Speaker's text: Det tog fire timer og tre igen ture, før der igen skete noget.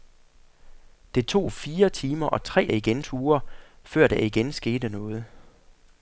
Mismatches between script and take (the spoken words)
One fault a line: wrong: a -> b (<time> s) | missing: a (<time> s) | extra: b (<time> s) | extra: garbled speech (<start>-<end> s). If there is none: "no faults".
no faults